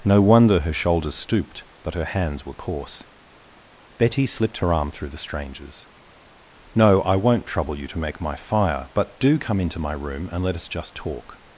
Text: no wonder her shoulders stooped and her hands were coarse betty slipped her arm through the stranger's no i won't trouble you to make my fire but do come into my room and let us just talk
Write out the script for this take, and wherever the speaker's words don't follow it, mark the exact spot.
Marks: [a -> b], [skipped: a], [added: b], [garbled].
no wonder her shoulders stooped [and -> but] her hands were coarse betty slipped her arm through the stranger's no i won't trouble you to make my fire but do come into my room and let us just talk